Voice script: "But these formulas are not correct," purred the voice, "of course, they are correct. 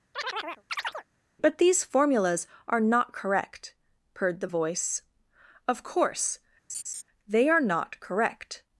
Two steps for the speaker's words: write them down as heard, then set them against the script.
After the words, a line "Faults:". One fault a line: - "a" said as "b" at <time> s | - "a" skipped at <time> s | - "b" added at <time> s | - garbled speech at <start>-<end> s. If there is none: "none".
"But these formulas are not correct," purred the voice, "of course, they are not correct.
Faults:
- "not" added at 7.6 s